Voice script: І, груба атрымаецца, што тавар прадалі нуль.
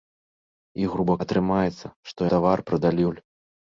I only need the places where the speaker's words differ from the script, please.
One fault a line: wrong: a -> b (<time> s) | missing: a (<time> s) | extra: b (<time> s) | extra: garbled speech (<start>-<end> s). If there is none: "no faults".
no faults